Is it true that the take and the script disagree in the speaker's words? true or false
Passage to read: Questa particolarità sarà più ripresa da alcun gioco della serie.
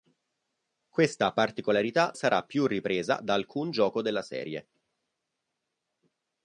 false